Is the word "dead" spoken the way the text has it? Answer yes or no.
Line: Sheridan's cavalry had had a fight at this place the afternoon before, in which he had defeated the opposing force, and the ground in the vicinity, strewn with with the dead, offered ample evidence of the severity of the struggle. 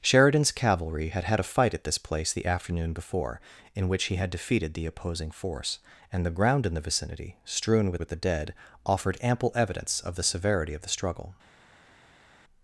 yes